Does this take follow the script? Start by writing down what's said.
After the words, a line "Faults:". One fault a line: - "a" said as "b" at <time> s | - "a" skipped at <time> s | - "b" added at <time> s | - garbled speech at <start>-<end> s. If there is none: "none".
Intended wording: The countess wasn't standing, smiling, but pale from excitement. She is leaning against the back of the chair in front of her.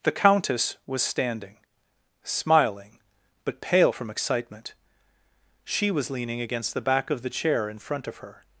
The countess was standing, smiling, but pale from excitement. She was leaning against the back of the chair in front of her.
Faults:
- "wasn't" said as "was" at 0.9 s
- "is" said as "was" at 5.9 s